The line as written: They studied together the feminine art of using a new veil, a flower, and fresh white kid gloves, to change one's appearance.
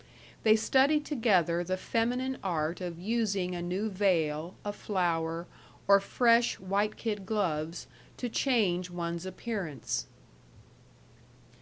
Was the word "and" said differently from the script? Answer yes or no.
yes